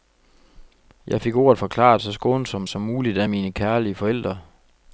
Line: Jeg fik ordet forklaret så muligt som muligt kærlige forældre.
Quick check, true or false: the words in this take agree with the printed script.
false